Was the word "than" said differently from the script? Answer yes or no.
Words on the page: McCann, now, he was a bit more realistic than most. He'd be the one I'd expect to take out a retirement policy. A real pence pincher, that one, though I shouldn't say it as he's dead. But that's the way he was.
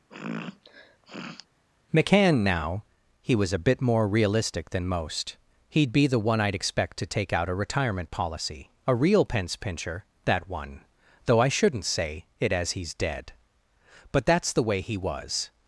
no